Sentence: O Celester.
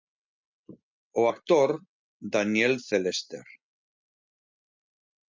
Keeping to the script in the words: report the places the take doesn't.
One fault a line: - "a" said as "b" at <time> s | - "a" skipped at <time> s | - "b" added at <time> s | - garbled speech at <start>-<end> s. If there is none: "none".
- "actor Daniel" added at 1.3 s